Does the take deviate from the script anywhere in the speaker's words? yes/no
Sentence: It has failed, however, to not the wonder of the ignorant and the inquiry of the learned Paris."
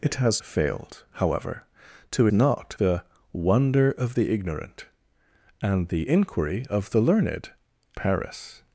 no